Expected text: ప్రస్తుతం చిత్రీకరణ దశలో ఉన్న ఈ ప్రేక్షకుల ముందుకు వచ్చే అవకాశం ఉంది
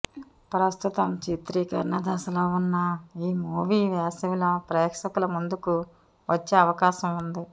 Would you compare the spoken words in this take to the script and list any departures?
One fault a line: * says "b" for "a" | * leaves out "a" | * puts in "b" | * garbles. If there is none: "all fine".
* puts in "మూవీ వేసవిలో"